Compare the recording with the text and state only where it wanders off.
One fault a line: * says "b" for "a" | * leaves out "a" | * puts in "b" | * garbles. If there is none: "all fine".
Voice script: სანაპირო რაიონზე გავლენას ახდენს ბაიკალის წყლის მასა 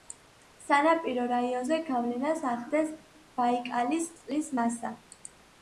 all fine